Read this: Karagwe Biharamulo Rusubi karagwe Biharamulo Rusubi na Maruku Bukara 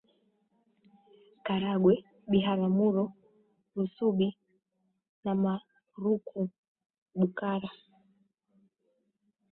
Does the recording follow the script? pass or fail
fail